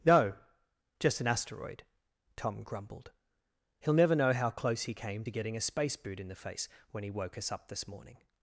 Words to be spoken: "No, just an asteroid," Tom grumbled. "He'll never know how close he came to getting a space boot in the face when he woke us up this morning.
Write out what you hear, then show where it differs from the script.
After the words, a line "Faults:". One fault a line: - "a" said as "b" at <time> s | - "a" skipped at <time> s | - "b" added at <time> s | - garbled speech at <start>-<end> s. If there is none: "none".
"No, just an asteroid," Tom grumbled. "He'll never know how close he came to getting a space boot in the face when he woke us up this morning.
Faults:
none